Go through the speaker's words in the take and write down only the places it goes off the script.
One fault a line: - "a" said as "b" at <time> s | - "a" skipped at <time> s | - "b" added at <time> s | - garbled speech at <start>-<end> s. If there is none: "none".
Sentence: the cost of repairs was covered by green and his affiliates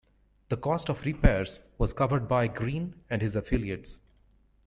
none